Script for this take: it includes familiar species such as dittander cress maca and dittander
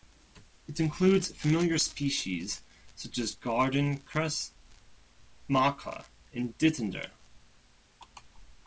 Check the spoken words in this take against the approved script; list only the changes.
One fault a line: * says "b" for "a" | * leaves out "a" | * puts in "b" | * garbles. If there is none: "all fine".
* says "garden" for "dittander"